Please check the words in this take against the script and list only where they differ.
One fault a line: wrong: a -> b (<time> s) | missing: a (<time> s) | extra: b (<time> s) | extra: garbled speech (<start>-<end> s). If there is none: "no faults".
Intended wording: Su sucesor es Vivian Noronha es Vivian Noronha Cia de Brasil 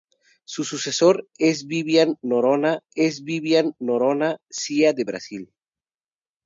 no faults